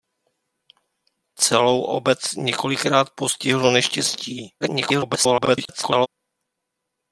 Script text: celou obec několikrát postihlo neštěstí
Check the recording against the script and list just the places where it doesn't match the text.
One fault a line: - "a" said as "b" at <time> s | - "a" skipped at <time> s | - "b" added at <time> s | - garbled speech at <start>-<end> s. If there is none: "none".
- garbled speech at 4.6-6.1 s